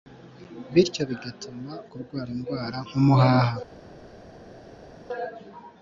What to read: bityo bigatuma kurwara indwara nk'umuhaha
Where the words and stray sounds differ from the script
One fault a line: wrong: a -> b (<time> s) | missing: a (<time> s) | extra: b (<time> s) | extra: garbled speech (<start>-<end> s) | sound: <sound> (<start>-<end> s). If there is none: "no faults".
no faults